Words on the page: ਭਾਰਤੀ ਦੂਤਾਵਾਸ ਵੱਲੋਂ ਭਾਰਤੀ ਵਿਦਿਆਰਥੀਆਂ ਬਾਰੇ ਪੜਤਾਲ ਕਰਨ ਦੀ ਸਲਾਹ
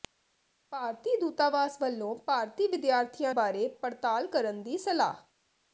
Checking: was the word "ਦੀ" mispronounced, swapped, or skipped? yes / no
no